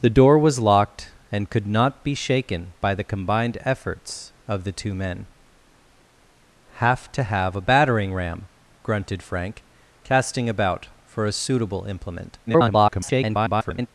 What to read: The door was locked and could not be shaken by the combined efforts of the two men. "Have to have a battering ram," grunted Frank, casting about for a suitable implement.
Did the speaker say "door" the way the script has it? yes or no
yes